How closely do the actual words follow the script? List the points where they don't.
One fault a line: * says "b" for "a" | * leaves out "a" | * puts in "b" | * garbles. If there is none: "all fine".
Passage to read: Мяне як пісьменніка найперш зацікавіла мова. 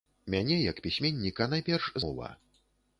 * leaves out "зацікавіла"